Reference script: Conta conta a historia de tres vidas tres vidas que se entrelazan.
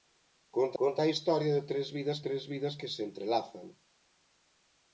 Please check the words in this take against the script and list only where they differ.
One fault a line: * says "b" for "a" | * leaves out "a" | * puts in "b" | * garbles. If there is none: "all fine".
all fine